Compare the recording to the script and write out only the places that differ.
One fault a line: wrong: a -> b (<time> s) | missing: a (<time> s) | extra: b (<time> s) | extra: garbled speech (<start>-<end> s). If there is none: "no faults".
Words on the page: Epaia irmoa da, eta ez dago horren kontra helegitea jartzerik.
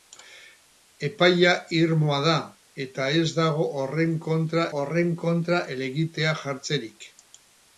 extra: horren kontra (4.8 s)